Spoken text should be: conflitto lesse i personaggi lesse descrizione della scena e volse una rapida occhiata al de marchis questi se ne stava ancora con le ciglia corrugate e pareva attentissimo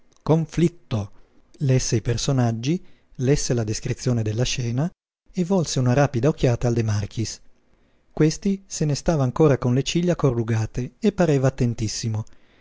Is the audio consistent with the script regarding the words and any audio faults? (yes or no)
no